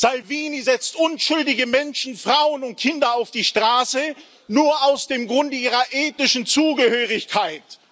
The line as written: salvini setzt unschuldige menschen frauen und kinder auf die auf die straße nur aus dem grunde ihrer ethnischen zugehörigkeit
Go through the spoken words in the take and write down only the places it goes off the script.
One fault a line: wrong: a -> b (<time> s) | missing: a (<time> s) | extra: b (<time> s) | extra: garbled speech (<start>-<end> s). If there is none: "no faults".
missing: auf die (3.4 s)